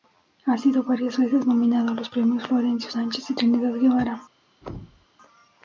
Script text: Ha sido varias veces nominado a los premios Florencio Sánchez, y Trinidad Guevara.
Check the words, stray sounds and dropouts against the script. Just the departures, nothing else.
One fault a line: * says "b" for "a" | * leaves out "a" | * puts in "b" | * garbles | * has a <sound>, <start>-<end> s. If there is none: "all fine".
* has a thud, 4.6-5.1 s